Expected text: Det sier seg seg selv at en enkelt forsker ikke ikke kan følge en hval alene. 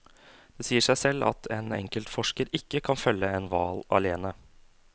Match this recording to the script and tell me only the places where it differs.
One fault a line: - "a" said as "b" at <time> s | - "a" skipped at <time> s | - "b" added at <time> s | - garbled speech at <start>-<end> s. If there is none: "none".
- "seg" skipped at 1.0 s
- "ikke" skipped at 2.8 s